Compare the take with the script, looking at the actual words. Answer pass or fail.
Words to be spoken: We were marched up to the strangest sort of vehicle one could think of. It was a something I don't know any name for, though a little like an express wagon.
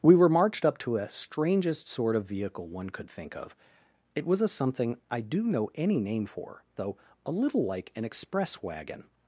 fail